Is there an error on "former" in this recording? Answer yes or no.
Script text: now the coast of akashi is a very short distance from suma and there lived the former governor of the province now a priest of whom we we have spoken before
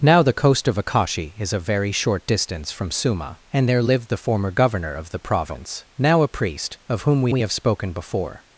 no